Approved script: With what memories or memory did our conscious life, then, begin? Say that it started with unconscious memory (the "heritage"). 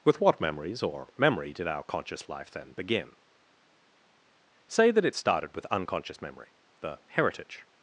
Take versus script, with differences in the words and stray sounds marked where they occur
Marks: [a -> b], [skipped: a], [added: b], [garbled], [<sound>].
With what memories or memory did our conscious life, then, begin? Say that it started with unconscious memory (the "heritage").